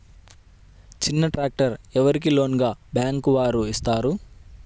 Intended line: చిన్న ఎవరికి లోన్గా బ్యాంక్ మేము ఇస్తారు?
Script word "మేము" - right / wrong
wrong